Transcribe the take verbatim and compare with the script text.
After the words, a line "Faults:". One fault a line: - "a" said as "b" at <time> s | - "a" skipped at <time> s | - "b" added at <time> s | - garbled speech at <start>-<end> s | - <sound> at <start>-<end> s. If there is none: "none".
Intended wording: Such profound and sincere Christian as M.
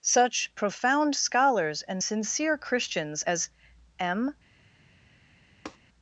Such profound scholars and sincere Christians as M.
Faults:
- "scholars" added at 1.1 s
- "Christian" said as "Christians" at 2.6 s
- tap at 5.7-5.8 s